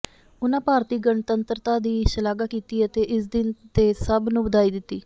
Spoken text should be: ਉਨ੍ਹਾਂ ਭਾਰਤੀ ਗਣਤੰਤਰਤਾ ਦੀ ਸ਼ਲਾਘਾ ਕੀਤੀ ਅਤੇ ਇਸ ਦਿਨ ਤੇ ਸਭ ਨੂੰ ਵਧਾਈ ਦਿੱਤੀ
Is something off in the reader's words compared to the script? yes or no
no